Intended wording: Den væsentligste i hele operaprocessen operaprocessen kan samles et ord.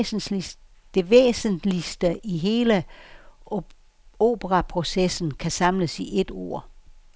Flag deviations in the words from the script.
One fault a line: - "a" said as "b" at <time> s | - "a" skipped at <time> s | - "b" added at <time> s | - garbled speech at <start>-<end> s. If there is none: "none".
- "Den" said as "Det" at 0.9 s
- "operaprocessen" skipped at 5.3 s
- "i" added at 6.0 s